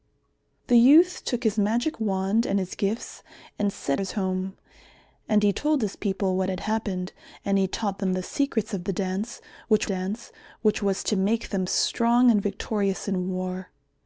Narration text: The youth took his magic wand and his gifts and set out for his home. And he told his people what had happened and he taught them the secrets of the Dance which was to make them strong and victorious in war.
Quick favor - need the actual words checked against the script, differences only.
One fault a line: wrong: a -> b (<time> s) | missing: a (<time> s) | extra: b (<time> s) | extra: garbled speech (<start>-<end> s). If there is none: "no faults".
missing: out for (4.0 s)
extra: Dance which (9.8 s)